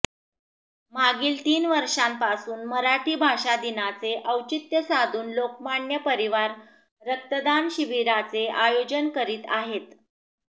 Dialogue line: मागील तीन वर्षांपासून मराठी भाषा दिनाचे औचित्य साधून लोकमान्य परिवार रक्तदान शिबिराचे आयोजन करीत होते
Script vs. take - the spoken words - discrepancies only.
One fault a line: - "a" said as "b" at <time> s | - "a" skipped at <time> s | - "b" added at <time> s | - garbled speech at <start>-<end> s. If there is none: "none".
- "होते" said as "आहेत" at 9.5 s